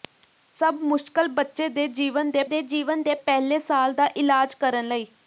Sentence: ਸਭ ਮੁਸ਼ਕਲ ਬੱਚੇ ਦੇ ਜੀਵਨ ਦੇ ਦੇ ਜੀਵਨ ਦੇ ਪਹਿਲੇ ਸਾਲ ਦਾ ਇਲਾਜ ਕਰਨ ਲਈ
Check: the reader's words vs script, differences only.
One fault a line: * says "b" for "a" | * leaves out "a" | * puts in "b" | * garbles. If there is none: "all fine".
all fine